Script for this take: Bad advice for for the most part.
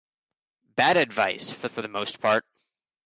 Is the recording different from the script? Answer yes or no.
no